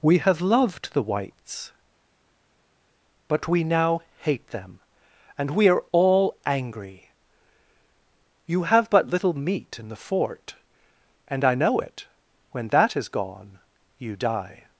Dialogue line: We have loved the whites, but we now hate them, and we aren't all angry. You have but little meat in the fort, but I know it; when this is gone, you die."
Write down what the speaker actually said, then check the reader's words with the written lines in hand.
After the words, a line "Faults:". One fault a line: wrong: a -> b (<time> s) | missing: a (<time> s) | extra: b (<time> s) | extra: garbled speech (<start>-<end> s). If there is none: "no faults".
We have loved the whites, but we now hate them, and we are all angry. You have but little meat in the fort, and I know it; when that is gone, you die."
Faults:
wrong: aren't -> are (5.7 s)
wrong: but -> and (11.3 s)
wrong: this -> that (12.7 s)